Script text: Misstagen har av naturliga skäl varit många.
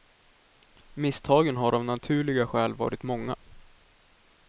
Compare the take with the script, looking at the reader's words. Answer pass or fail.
pass